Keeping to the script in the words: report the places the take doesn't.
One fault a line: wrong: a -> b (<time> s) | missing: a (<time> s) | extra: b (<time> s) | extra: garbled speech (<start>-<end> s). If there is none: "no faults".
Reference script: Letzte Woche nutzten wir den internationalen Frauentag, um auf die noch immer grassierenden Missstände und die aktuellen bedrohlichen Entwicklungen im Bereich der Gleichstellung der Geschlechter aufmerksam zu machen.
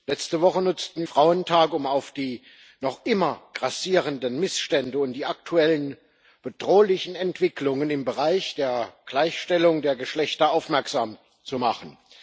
missing: wir den internationalen (1.1 s)